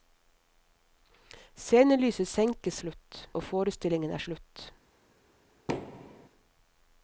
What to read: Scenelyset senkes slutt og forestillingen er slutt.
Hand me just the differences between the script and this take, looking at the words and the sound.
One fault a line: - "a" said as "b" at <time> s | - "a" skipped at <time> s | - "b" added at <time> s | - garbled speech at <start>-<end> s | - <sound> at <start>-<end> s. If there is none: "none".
- thud at 5.7-6.3 s